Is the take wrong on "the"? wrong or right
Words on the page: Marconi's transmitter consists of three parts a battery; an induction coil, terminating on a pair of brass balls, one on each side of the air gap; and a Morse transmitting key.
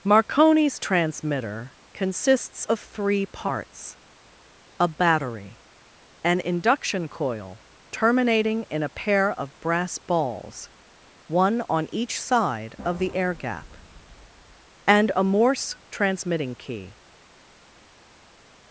right